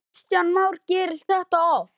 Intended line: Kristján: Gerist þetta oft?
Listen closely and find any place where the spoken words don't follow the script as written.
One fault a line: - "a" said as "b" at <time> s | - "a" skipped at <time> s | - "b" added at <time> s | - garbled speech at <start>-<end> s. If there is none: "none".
- "Már" added at 0.5 s